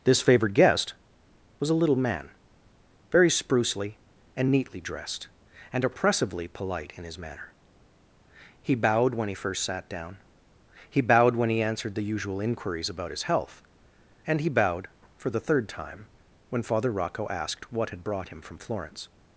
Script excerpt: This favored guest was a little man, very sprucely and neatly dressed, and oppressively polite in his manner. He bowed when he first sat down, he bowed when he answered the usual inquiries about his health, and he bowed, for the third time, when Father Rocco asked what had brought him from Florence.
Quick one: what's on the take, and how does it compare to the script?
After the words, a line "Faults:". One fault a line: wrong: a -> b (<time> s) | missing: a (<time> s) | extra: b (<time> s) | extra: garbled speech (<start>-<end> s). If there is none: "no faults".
This favored guest was a little man, very sprucely and neatly dressed, and oppressively polite in his manner. He bowed when he first sat down, he bowed when he answered the usual inquiries about his health, and he bowed, for the third time, when Father Rocco asked what had brought him from Florence.
Faults:
no faults